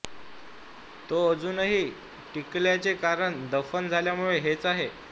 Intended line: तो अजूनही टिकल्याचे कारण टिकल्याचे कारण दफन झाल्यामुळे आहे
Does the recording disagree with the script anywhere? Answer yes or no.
yes